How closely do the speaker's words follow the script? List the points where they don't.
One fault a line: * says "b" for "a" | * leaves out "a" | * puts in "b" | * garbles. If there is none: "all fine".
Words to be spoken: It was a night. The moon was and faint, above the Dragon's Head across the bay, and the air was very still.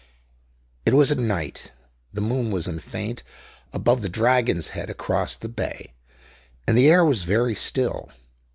all fine